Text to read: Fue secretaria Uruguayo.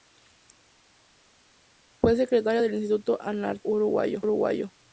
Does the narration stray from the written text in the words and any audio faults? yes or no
yes